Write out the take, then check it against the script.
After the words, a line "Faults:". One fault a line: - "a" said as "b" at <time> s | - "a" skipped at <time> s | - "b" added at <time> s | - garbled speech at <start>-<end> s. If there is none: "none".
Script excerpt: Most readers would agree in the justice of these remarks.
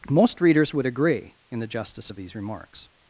Most readers would agree in the justice of these remarks.
Faults:
none